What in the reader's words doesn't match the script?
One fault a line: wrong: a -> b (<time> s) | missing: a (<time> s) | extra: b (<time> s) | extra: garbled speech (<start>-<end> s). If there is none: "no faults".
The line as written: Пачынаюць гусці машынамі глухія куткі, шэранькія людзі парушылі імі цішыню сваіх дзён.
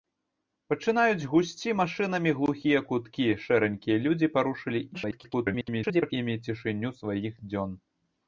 extra: garbled speech (4.9-6.1 s)